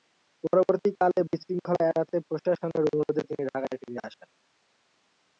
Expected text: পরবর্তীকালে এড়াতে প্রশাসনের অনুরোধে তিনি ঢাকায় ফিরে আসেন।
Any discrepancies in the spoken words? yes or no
yes